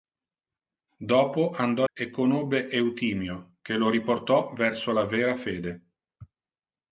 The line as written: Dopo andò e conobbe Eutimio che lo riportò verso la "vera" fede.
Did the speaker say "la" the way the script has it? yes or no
yes